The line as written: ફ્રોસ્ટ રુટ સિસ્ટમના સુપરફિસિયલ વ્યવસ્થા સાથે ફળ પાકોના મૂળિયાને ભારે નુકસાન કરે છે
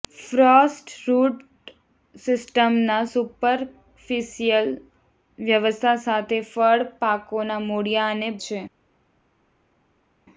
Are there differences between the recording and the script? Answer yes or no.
yes